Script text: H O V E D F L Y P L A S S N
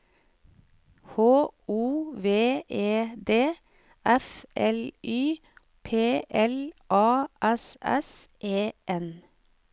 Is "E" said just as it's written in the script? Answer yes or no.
yes